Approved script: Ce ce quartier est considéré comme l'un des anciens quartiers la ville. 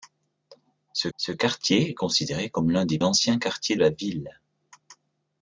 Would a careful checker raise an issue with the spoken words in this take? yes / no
no